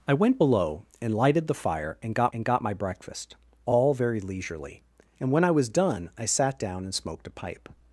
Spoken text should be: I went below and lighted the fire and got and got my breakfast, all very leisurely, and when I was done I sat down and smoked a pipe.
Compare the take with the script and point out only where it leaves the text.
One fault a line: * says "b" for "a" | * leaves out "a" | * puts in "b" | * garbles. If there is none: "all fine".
all fine